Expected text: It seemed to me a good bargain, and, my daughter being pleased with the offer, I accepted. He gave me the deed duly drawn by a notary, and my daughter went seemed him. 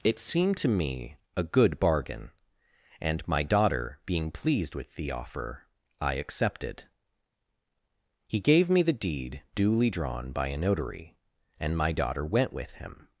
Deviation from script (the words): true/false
true